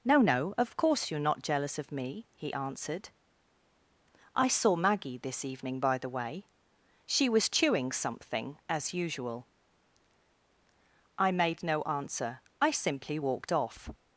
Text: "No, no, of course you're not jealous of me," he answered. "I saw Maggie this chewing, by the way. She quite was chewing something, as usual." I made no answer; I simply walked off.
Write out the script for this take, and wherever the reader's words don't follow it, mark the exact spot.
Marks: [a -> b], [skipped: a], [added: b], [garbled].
"No, no, of course you're not jealous of me," he answered. "I saw Maggie this [chewing, -> evening] by the way. She [skipped: quite] was chewing something, as usual." I made no answer; I simply walked off.